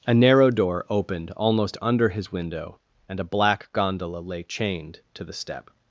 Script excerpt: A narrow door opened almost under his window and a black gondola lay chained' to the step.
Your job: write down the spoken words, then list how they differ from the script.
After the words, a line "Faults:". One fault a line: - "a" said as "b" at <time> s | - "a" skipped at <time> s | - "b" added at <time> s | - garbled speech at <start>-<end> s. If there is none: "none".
A narrow door opened almost under his window and a black gondola lay chained' to the step.
Faults:
none